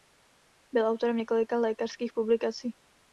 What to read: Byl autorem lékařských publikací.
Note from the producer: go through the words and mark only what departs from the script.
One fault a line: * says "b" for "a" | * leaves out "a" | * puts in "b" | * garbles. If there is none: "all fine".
* puts in "několika"